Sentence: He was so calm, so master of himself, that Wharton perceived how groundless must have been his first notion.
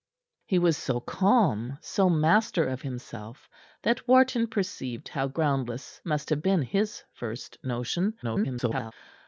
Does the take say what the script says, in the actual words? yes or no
no